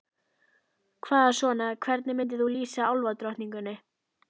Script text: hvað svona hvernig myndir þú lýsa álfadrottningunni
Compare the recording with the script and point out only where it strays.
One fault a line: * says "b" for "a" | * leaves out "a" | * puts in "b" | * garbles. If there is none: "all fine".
all fine